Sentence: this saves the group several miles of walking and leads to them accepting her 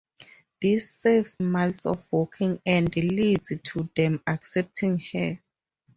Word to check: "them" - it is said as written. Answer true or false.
true